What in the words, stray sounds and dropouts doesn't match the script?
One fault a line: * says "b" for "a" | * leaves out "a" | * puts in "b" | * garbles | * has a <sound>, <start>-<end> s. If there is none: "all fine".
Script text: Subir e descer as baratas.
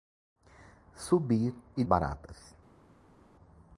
* leaves out "descer as"